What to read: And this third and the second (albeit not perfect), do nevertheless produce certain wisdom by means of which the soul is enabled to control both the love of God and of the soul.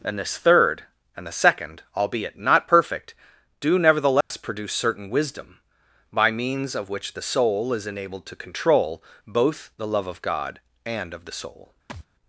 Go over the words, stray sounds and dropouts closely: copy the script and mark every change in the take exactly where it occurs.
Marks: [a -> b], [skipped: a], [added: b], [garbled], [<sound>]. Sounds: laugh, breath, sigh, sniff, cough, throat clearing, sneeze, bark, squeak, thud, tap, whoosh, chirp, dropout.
And this third and the second (albeit not perfect), do nevertheless [dropout] produce certain wisdom by means of which the soul is enabled to control both the love of God and of the soul. [thud]